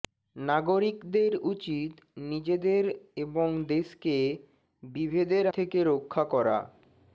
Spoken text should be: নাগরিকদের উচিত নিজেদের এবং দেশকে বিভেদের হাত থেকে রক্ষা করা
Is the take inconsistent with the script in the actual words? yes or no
yes